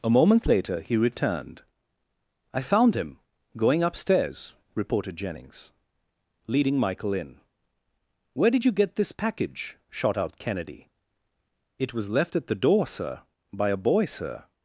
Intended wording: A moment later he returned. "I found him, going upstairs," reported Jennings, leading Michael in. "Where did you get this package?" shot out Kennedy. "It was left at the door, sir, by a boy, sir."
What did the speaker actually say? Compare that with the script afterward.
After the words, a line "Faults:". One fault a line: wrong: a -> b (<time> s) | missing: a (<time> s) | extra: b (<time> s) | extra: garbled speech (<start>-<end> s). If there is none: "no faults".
A moment later he returned. "I found him, going upstairs," reported Jennings, leading Michael in. "Where did you get this package?" shot out Kennedy. "It was left at the door, sir, by a boy, sir."
Faults:
no faults